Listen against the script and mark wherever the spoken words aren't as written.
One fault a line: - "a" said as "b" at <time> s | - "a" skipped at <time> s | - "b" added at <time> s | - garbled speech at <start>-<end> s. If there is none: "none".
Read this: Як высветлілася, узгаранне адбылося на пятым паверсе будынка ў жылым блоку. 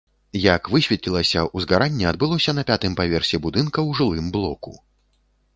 none